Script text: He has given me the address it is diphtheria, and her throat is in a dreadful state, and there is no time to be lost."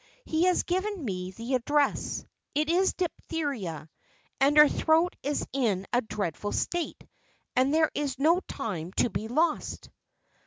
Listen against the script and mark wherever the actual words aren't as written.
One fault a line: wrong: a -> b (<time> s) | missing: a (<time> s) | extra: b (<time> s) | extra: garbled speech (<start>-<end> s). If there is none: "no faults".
no faults